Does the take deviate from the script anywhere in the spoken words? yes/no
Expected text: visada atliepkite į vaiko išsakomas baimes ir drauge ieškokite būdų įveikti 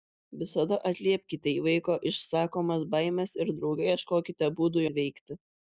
no